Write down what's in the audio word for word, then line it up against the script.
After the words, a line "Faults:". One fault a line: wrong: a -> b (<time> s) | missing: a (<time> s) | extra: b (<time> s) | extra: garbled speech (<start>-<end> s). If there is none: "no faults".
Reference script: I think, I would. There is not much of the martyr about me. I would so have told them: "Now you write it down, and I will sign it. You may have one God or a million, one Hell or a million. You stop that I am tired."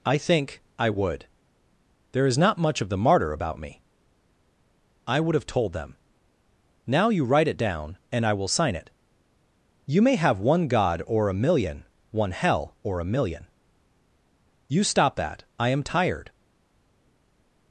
I think, I would. There is not much of the martyr about me. I would have told them: "Now you write it down, and I will sign it. You may have one God or a million, one Hell or a million. You stop that I am tired."
Faults:
missing: so (5.3 s)